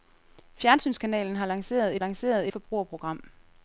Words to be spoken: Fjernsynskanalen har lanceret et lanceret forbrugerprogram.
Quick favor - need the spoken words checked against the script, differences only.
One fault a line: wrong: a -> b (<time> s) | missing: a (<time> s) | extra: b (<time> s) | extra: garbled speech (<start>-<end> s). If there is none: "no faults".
no faults